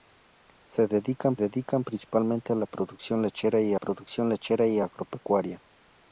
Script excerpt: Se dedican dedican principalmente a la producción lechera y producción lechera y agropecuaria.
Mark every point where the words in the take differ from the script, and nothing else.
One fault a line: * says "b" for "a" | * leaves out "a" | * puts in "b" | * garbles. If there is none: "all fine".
all fine